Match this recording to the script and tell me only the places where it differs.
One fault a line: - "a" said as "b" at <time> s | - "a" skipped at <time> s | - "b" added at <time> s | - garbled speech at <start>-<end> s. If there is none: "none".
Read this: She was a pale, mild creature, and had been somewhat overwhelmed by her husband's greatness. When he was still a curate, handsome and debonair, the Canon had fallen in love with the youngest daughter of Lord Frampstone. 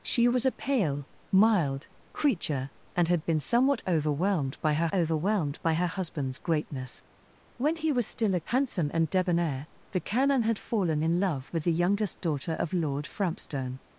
- "overwhelmed by her" added at 4.9 s
- "curate" skipped at 8.4 s